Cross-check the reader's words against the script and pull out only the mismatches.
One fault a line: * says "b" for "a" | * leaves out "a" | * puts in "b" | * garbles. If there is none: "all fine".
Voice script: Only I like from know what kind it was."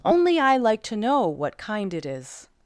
* says "to" for "from"
* says "is" for "was"